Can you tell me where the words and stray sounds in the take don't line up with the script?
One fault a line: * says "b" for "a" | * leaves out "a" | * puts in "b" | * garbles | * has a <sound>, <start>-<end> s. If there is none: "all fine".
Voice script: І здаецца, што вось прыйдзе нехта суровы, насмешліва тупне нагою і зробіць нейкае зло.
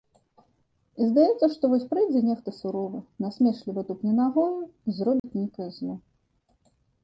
* has a dropout, 5.2-5.2 s